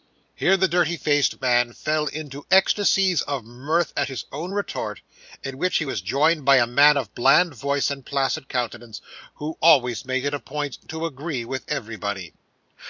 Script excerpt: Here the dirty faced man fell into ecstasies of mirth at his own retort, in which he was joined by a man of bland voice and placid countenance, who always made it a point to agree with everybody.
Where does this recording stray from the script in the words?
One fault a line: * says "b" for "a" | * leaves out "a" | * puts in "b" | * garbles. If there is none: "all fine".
all fine